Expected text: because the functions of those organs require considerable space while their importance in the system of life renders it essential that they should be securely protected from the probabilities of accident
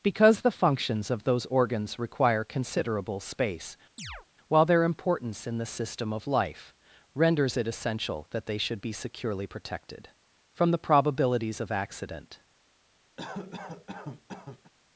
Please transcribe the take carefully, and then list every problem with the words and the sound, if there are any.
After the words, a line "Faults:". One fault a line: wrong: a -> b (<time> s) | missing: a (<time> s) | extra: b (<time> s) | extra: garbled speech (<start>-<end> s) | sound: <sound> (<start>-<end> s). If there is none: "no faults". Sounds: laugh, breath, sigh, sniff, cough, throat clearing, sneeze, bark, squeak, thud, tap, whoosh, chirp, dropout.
because the functions of those organs require considerable space while their importance in the system of life renders it essential that they should be securely protected from the probabilities of accident
Faults:
sound: chirp (4.0-4.3 s)
sound: cough (13.2-14.7 s)